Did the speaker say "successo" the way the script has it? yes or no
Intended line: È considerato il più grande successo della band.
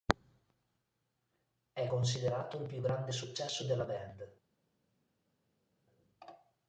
yes